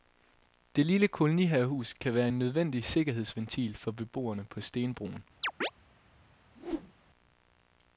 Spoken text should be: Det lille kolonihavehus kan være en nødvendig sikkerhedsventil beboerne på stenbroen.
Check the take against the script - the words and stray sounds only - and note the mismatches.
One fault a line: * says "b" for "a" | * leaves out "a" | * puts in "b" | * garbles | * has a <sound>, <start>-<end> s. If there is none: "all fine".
* puts in "for"
* has a chirp, 5.4-5.7 s
* has a whoosh, 6.6-6.9 s